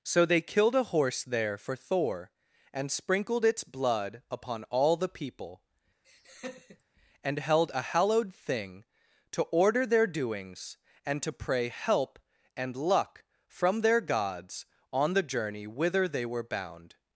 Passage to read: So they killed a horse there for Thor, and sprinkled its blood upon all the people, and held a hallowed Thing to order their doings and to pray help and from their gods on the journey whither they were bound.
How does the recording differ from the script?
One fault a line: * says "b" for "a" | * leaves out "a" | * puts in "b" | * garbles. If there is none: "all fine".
* puts in "luck"